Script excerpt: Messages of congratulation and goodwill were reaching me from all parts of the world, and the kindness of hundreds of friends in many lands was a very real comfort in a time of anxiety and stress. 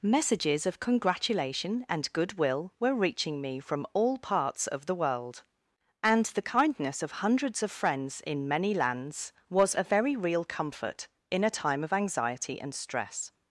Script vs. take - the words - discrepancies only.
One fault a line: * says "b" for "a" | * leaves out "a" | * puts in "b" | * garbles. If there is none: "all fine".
all fine